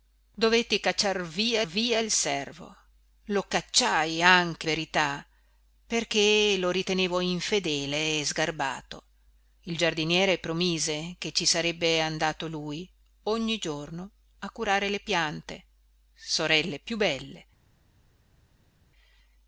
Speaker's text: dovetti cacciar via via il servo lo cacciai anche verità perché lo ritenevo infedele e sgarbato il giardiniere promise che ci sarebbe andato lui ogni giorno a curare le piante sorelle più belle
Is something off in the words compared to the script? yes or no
no